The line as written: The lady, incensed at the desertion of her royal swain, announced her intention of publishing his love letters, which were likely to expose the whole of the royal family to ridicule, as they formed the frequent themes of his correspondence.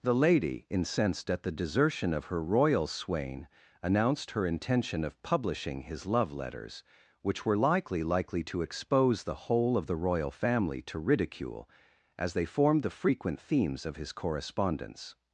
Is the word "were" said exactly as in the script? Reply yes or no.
yes